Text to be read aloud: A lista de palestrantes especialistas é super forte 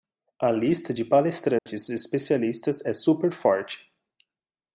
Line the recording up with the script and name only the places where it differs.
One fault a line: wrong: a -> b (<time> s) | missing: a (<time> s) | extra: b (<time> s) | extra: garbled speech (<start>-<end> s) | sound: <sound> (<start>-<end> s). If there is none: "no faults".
sound: dropout (1.6-1.7 s)